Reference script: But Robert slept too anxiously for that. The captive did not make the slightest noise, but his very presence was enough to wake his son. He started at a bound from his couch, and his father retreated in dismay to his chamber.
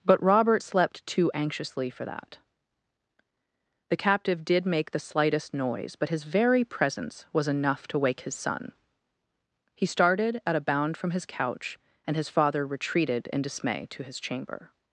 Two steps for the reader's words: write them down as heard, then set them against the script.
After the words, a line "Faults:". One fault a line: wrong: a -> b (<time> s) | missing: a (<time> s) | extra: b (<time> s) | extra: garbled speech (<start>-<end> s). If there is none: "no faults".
But Robert slept too anxiously for that. The captive did make the slightest noise, but his very presence was enough to wake his son. He started at a bound from his couch, and his father retreated in dismay to his chamber.
Faults:
missing: not (4.7 s)